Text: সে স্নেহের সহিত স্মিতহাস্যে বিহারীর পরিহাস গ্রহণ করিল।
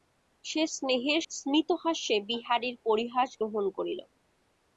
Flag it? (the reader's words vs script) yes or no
yes